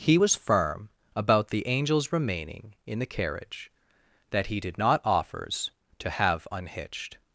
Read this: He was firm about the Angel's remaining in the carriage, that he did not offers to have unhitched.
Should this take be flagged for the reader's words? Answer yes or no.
no